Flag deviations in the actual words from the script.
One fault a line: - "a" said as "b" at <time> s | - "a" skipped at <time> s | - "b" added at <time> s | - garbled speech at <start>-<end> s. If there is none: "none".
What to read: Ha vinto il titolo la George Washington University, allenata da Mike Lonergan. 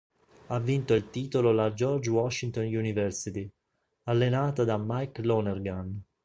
none